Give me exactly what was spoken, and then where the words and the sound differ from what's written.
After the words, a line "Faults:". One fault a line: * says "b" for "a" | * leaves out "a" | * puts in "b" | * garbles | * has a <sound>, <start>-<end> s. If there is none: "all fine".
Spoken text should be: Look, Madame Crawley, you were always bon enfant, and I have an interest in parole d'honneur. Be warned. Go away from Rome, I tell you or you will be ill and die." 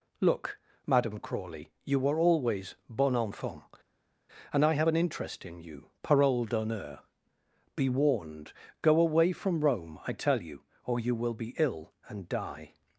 Look, Madame Crawley, you were always bon enfant, and I have an interest in you, parole d'honneur. Be warned. Go away from Rome, I tell you or you will be ill and die."
Faults:
* puts in "you"